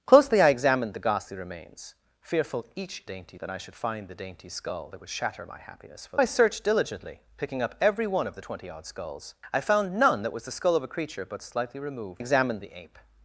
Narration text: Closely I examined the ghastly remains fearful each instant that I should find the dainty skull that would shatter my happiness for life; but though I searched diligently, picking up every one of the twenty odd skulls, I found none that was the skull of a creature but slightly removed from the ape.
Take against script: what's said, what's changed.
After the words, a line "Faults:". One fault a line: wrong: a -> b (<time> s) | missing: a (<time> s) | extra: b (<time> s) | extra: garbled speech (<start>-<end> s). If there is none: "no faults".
Closely I examined the ghastly remains fearful each dainty that I should find the dainty skull that would shatter my happiness for I searched diligently, picking up every one of the twenty odd skulls, I found none that was the skull of a creature but slightly removed examined the ape.
Faults:
wrong: instant -> dainty (3.0 s)
missing: life but though (6.2 s)
wrong: from -> examined (12.2 s)